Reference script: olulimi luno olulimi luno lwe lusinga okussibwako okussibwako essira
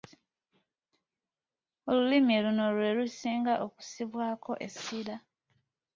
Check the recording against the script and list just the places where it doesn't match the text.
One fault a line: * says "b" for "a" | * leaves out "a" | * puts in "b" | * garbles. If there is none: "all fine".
* leaves out "olulimi luno"
* leaves out "okussibwako"